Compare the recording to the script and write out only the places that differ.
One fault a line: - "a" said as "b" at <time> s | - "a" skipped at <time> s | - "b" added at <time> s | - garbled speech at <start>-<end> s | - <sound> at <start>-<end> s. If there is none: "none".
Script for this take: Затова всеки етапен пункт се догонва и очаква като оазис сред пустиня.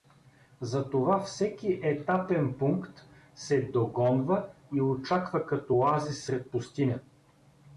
none